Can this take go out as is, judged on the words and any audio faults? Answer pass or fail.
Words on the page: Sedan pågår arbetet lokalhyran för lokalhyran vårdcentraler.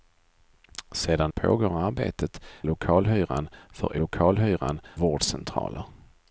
pass